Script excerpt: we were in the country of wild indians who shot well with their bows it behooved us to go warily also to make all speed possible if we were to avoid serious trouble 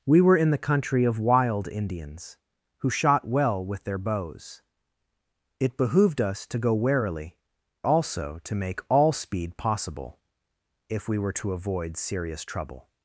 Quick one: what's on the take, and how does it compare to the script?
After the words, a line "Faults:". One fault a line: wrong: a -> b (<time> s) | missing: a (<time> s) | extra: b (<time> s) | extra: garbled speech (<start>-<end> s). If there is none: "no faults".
we were in the country of wild indians who shot well with their bows it behooved us to go warily also to make all speed possible if we were to avoid serious trouble
Faults:
no faults